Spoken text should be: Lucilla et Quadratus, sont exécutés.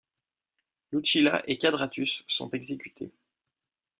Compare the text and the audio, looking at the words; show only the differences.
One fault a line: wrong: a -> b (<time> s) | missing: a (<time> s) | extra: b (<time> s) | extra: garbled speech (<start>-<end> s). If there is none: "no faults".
no faults